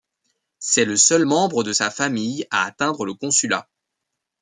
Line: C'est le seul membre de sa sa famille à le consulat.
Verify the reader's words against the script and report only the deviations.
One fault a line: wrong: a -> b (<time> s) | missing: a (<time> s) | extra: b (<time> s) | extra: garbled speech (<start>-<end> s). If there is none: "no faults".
missing: sa (1.9 s)
extra: atteindre (2.7 s)